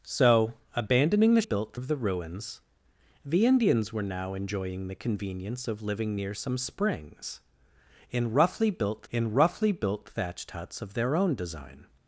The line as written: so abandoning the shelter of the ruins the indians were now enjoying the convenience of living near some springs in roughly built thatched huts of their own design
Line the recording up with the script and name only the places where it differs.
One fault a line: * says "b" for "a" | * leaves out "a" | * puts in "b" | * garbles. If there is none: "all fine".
* says "built" for "shelter"
* puts in "in roughly built"